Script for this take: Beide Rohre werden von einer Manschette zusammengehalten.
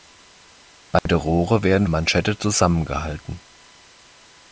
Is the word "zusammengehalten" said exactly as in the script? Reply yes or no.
yes